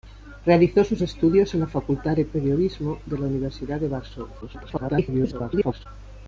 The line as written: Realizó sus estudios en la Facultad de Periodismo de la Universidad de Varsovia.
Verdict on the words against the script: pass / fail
fail